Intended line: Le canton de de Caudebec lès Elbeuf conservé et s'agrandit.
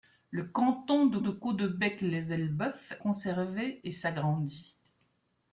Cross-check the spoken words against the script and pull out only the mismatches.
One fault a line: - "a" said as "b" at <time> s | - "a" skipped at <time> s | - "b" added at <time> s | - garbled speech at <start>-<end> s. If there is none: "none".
none